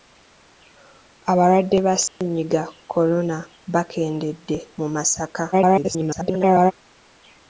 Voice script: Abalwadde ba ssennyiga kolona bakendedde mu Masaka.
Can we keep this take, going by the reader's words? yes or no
no